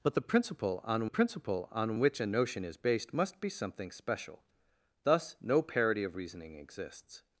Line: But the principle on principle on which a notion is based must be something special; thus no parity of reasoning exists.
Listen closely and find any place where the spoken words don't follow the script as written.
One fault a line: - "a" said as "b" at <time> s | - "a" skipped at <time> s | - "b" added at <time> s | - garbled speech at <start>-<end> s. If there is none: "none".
none